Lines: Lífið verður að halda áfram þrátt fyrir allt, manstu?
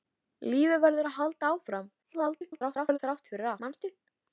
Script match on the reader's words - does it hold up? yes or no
no